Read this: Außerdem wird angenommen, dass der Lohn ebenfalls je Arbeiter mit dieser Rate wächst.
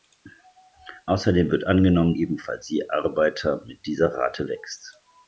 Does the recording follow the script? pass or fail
fail